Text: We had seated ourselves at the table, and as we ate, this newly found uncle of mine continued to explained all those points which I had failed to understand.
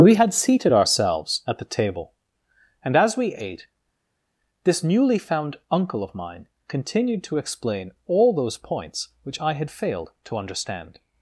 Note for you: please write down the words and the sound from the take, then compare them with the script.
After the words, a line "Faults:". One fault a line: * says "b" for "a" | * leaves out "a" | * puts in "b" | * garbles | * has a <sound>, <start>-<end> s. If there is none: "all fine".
We had seated ourselves at the table, and as we ate, this newly found uncle of mine continued to explain all those points which I had failed to understand.
Faults:
* says "explain" for "explained"